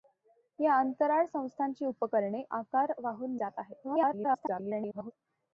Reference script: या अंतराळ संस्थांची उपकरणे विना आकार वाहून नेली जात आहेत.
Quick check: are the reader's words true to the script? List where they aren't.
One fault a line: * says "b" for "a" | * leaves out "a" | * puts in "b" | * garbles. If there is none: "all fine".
* leaves out "विना"
* leaves out "नेली"
* garbles